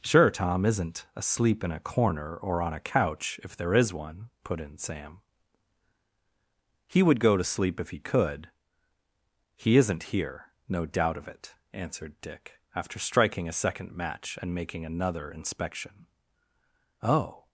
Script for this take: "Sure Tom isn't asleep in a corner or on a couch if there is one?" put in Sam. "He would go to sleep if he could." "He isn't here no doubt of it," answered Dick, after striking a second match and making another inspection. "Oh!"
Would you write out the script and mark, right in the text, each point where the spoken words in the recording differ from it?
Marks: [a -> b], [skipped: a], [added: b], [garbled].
"Sure Tom isn't asleep in a corner or on a couch if there is one?" put in Sam. "He would go to sleep if he could." "He isn't here no doubt of it," answered Dick, after striking a second match and making another inspection. "Oh!"